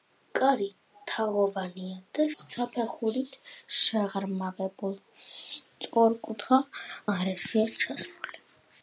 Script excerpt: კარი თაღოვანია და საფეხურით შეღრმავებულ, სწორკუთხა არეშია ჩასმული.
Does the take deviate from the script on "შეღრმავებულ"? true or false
false